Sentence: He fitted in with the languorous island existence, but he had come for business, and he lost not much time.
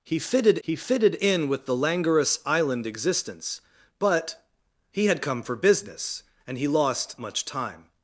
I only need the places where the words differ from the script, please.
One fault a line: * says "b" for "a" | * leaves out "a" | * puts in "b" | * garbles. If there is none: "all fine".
* puts in "he fitted"
* leaves out "not"